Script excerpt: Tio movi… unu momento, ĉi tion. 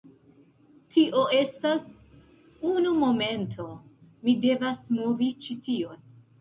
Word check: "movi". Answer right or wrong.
wrong